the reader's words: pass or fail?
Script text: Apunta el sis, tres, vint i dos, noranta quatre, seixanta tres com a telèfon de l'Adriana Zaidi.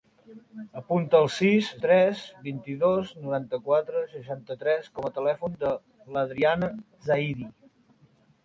pass